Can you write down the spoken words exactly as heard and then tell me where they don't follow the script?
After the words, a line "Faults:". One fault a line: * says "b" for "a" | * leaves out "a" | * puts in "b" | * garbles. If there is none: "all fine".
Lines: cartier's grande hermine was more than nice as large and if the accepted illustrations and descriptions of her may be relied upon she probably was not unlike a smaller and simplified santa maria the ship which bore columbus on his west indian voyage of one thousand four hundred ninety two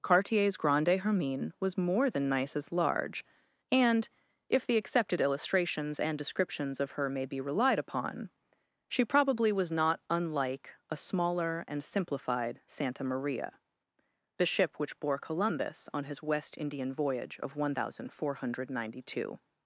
cartier's grande hermine was more than nice as large and if the accepted illustrations and descriptions of her may be relied upon she probably was not unlike a smaller and simplified santa maria the ship which bore columbus on his west indian voyage of one thousand four hundred ninety two
Faults:
all fine